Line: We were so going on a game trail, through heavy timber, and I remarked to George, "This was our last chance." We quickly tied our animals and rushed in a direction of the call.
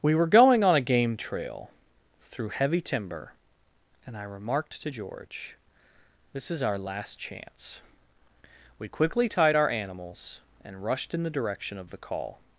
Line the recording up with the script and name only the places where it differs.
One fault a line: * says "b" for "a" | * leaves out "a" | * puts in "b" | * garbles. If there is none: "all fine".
* leaves out "so"
* says "is" for "was"
* says "the" for "a"